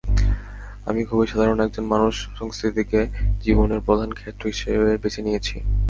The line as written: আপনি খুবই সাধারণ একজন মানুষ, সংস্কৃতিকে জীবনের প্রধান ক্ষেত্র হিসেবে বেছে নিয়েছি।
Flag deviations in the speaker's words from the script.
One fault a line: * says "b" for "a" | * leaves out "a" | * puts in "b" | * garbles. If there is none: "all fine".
* says "আমি" for "আপনি"